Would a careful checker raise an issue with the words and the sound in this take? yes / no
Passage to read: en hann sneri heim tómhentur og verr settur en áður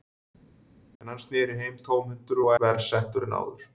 no